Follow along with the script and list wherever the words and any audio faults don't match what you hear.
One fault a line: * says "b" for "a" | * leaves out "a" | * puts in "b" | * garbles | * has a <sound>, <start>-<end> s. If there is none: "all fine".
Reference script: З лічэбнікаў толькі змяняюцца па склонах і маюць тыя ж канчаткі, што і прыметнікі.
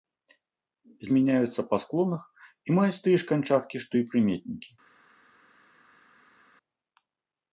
* leaves out "лічэбнікаў толькі"